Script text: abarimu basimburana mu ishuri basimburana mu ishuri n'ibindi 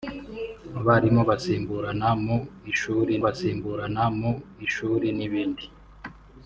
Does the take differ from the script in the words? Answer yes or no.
no